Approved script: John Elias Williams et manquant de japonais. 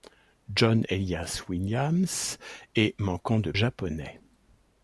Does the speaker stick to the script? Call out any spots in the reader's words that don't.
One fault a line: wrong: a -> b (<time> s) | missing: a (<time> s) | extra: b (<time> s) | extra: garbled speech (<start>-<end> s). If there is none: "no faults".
no faults